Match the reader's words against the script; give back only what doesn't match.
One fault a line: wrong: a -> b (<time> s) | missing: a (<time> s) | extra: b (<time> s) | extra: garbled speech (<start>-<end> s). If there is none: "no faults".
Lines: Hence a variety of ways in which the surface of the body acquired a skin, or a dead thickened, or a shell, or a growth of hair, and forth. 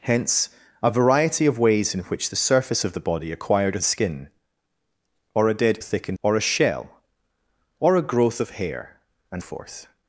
no faults